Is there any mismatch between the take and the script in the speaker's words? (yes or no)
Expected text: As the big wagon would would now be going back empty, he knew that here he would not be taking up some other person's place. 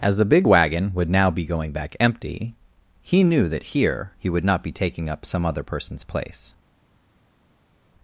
yes